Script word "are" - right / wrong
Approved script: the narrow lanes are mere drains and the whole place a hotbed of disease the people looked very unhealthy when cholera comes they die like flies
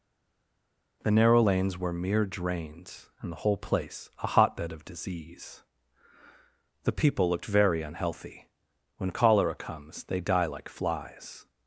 wrong